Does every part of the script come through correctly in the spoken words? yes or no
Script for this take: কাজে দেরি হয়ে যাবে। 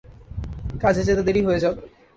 no